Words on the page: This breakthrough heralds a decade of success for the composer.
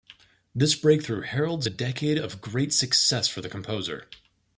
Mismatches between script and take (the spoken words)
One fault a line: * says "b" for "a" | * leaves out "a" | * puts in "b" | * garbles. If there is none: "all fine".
* puts in "great"